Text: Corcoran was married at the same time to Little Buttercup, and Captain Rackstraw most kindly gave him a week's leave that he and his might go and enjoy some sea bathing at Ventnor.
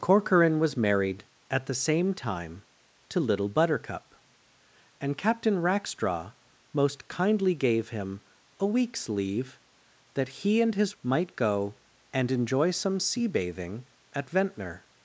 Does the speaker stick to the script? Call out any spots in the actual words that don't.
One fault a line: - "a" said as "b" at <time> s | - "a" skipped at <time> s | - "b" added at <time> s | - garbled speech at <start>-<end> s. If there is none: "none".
none